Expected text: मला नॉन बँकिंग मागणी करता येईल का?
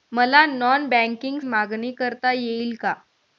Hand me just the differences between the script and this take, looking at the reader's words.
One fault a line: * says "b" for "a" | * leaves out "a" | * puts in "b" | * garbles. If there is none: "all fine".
all fine